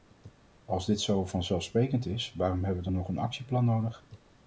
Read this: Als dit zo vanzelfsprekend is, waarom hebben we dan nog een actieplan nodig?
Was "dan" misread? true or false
true